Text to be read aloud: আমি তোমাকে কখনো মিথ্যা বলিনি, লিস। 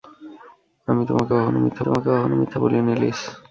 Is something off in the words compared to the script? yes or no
yes